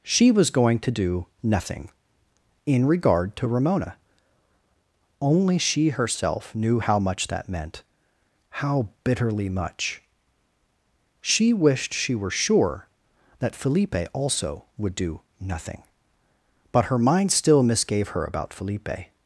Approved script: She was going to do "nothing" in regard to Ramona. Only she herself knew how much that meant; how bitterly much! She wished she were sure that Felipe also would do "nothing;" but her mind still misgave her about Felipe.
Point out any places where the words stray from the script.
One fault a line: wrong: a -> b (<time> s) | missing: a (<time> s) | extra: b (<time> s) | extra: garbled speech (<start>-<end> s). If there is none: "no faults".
no faults